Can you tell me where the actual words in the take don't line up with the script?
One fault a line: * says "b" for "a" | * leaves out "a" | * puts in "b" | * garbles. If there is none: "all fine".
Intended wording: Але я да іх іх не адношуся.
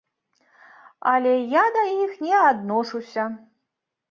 * leaves out "іх"